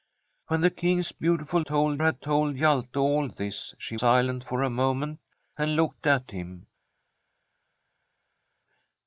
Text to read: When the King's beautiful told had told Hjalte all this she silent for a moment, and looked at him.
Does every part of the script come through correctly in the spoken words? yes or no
yes